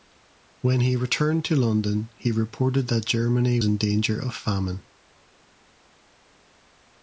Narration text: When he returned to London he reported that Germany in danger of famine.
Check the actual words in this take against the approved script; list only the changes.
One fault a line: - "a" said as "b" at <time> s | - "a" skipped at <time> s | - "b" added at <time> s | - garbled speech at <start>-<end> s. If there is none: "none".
none